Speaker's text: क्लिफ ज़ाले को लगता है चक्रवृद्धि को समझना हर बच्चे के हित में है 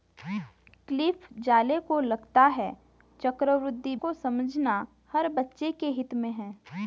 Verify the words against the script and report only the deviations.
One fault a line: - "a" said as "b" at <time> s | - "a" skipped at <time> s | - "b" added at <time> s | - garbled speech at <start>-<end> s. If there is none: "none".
none